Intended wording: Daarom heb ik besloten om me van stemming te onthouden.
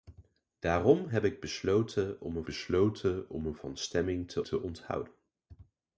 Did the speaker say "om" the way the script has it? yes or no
yes